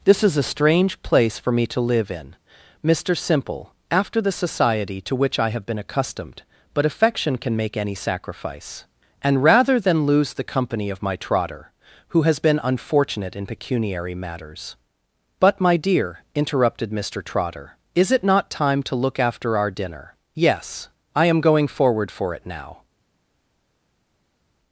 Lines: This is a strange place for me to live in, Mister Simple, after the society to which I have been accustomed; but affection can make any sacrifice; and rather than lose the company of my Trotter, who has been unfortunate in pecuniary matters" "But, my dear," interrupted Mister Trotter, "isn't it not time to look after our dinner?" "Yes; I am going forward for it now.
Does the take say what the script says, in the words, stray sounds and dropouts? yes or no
no